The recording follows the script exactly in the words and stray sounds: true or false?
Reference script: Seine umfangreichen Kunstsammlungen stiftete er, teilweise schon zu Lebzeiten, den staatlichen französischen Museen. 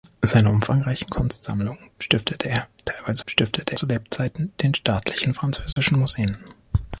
false